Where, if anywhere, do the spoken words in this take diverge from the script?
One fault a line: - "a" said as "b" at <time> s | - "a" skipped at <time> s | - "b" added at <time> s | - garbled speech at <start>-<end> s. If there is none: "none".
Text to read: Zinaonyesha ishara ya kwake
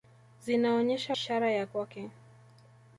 none